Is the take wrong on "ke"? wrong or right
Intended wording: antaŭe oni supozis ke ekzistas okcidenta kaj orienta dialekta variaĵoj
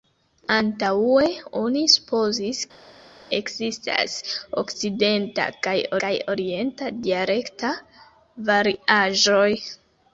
wrong